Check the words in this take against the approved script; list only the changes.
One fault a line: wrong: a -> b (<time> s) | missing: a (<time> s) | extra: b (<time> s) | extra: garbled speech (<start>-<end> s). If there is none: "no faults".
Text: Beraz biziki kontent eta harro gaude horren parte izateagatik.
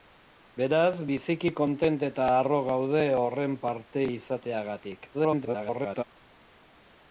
extra: garbled speech (5.1-6.0 s)